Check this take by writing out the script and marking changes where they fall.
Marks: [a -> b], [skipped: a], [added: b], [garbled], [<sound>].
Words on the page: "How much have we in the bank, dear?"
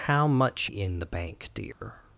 "How much [skipped: have we] in the bank, dear?" [dropout]